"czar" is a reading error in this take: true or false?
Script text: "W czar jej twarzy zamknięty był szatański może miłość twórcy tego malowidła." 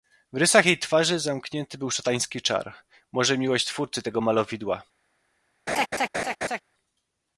true